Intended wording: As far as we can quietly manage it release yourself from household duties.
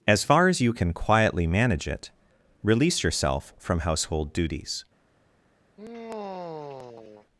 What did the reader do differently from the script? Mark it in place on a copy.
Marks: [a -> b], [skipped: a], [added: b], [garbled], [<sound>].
As far as [we -> you] can quietly manage it release yourself from household duties. [sigh]